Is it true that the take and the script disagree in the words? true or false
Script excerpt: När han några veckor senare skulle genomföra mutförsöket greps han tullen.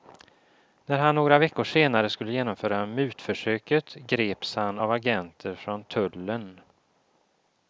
true